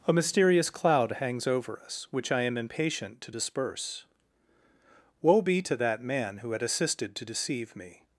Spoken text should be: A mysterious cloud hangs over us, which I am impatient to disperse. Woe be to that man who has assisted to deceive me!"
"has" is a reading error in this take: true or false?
true